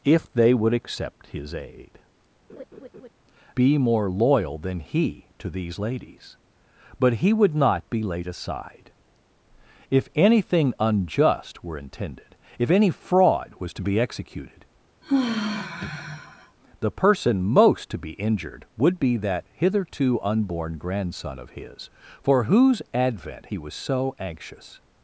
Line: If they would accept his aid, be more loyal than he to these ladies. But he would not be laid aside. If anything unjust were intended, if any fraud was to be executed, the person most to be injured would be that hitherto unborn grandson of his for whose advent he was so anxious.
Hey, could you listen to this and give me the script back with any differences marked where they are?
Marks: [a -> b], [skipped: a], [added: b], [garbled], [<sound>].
If they would accept his aid, [laugh] be more loyal than he to these ladies. But he would not be laid aside. If anything unjust were intended, if any fraud was to be executed, [sigh] the person most to be injured would be that hitherto unborn grandson of his for whose advent he was so anxious.